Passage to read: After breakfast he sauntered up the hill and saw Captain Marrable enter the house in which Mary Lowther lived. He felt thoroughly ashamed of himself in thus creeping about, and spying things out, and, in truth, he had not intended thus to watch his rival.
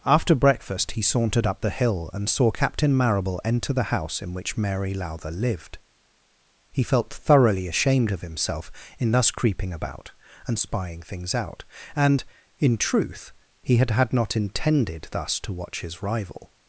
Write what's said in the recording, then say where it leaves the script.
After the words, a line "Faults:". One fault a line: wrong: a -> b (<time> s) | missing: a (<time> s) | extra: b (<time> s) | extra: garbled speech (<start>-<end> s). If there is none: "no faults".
After breakfast he sauntered up the hill and saw Captain Marrable enter the house in which Mary Lowther lived. He felt thoroughly ashamed of himself in thus creeping about, and spying things out, and, in truth, he had had not intended thus to watch his rival.
Faults:
extra: had (13.9 s)